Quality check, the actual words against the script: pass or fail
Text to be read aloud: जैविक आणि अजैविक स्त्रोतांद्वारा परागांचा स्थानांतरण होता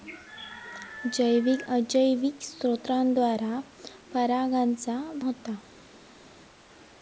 fail